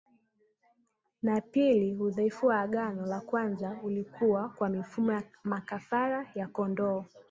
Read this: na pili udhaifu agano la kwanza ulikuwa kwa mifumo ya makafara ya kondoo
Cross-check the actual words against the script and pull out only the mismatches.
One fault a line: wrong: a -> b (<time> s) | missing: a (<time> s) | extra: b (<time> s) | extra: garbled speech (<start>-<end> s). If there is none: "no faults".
extra: wa (2.5 s)